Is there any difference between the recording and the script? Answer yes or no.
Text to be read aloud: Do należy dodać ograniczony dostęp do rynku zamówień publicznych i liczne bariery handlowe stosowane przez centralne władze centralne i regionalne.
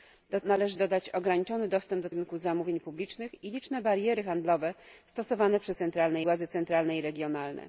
no